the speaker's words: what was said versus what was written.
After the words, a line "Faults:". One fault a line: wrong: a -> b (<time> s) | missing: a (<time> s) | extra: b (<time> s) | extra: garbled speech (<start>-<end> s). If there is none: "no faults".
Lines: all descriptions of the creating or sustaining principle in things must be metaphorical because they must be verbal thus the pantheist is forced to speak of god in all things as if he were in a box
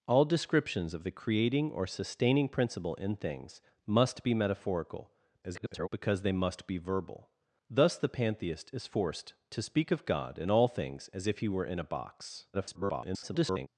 all descriptions of the creating or sustaining principle in things must be metaphorical [garbled] because they must be verbal thus the pantheist is forced to speak of god in all things as if he were in a box [garbled]
Faults:
extra: garbled speech (5.4-5.9 s)
extra: garbled speech (12.5-13.7 s)